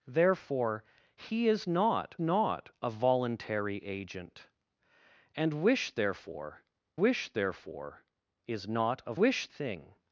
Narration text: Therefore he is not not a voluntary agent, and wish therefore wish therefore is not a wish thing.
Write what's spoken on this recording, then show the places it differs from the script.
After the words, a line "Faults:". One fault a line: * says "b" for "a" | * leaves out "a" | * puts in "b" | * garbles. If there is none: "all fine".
Therefore he is not not a voluntary agent, and wish therefore wish therefore is not a wish thing.
Faults:
all fine